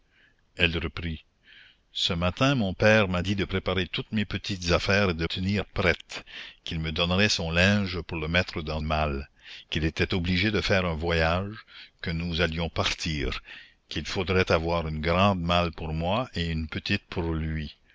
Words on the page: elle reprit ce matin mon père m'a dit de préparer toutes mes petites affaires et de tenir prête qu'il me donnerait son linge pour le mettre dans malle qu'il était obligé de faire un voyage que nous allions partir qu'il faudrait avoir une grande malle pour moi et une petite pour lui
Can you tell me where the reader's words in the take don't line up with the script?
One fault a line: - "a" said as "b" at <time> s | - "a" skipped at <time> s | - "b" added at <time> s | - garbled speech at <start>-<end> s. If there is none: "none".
none